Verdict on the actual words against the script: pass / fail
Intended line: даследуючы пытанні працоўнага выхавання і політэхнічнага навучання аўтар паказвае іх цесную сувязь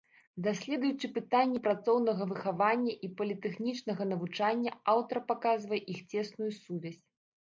pass